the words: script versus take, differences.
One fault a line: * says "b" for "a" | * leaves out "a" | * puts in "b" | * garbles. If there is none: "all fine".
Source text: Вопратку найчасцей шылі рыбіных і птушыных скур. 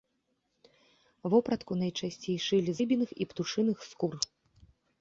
all fine